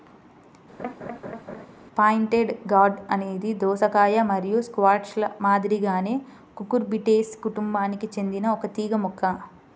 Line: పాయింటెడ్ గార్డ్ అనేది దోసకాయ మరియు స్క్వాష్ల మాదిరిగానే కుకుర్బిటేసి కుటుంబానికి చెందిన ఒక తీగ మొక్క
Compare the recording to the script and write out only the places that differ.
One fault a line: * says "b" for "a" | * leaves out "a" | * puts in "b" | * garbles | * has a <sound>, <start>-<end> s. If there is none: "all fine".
* has a laugh, 0.8-1.7 s